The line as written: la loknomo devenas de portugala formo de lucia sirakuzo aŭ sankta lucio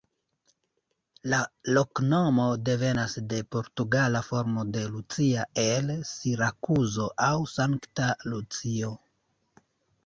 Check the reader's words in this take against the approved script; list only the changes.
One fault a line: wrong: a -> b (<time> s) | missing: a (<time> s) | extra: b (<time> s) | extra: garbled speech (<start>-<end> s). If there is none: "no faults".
extra: el (5.7 s)